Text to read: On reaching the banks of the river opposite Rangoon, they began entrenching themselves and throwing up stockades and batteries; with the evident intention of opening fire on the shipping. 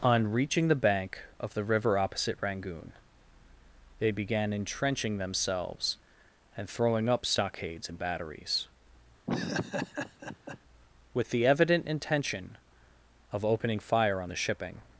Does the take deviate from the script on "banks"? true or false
true